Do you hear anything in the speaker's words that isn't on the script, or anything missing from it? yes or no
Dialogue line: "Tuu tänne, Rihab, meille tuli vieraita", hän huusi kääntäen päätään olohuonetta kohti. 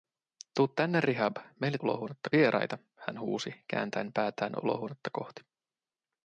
yes